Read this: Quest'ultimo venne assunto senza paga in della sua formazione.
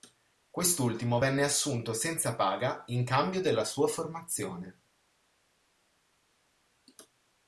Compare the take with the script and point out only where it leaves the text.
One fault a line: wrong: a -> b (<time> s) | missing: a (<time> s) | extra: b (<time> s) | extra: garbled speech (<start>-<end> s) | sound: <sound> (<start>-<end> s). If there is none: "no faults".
extra: cambio (3.0 s)